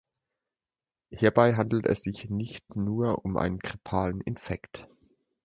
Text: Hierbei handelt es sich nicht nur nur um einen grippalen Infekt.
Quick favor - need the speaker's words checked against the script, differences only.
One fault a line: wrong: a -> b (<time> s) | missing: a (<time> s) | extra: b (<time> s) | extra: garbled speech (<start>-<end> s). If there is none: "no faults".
missing: nur (3.3 s)